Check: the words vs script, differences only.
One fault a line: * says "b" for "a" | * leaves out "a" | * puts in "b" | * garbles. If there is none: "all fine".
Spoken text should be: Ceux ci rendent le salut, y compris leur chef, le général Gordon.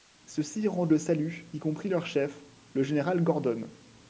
all fine